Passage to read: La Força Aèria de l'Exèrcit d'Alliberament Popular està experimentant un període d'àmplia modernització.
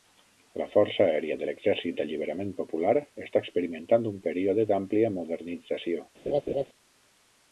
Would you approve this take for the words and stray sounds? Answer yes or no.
no